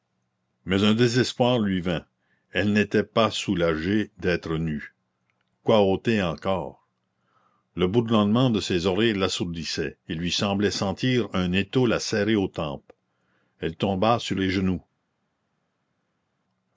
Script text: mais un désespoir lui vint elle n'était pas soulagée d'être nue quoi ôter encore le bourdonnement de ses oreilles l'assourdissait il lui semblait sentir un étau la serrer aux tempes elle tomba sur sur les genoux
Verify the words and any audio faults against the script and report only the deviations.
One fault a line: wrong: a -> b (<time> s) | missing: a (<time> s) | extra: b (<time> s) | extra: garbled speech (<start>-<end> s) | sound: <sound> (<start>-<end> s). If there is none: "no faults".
missing: sur (14.4 s)